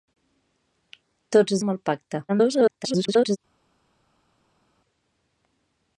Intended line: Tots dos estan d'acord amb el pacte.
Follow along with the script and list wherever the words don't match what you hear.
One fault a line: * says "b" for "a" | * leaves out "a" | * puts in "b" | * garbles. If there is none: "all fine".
* leaves out "dos estan d'acord"
* garbles